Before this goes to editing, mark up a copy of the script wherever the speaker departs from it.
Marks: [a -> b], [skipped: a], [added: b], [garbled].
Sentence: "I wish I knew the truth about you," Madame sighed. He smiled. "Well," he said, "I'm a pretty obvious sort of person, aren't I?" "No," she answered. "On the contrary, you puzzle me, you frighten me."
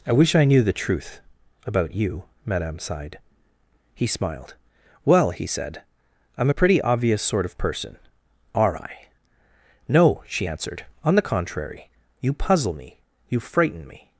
"I wish I knew the truth about you," Madame sighed. He smiled. "Well," he said, "I'm a pretty obvious sort of person, [aren't -> are] I?" "No," she answered. "On the contrary, you puzzle me, you frighten me."